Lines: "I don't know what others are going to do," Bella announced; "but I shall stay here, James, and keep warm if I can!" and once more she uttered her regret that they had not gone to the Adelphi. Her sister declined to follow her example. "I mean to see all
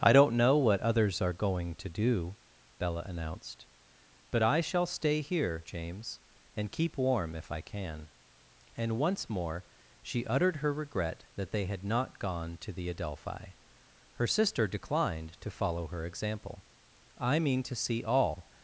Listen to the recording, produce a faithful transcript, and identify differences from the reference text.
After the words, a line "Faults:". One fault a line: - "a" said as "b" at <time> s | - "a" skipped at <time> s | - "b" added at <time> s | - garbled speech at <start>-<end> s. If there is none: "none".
"I don't know what others are going to do," Bella announced; "but I shall stay here, James, and keep warm if I can!" and once more she uttered her regret that they had not gone to the Adelphi. Her sister declined to follow her example. "I mean to see all
Faults:
none